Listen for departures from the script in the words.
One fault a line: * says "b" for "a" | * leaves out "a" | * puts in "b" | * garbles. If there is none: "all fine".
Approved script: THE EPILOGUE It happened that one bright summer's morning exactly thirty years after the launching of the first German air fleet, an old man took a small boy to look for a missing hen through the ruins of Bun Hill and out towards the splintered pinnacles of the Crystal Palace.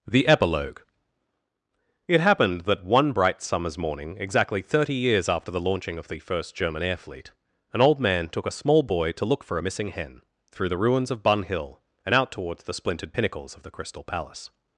all fine